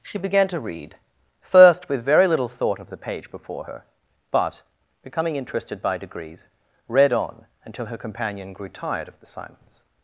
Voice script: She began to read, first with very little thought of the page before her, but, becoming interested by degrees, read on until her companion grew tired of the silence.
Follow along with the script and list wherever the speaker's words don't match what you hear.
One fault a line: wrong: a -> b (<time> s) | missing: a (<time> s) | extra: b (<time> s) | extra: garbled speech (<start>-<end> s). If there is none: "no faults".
no faults